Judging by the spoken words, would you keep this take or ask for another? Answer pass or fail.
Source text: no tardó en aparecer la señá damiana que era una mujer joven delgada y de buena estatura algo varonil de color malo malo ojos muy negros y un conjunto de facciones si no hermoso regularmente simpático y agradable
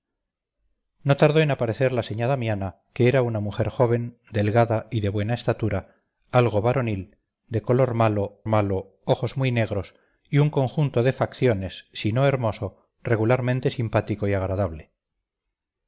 pass